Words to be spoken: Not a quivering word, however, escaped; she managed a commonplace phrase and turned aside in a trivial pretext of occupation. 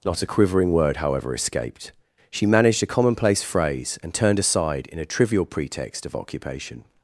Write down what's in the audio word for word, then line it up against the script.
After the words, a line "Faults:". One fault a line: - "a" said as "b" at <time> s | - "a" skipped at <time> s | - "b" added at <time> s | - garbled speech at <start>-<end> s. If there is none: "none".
Not a quivering word, however, escaped; she managed a commonplace phrase and turned aside in a trivial pretext of occupation.
Faults:
none